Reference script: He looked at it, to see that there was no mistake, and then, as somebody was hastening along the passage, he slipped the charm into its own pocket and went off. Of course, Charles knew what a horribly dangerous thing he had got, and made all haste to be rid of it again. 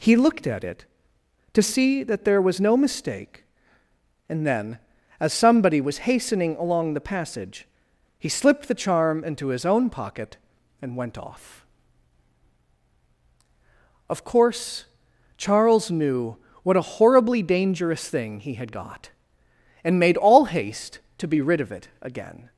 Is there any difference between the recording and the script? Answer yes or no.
yes